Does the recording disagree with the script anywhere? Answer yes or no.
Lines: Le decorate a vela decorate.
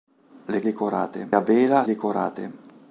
no